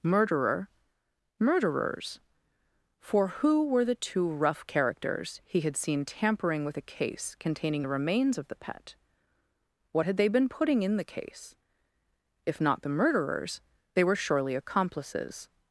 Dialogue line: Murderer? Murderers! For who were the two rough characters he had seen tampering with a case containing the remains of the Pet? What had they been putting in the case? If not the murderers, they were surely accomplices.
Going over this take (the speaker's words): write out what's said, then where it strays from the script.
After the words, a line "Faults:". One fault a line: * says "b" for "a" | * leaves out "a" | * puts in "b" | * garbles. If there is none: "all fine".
Murderer? Murderers! For who were the two rough characters he had seen tampering with a case containing the remains of the Pet? What had they been putting in the case? If not the murderers, they were surely accomplices.
Faults:
all fine